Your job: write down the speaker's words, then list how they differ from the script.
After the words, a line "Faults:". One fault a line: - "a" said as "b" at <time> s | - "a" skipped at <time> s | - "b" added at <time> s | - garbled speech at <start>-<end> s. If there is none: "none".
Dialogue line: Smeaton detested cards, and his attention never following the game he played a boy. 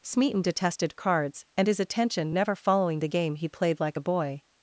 Smeaton detested cards, and his attention never following the game he played like a boy.
Faults:
- "like" added at 3.8 s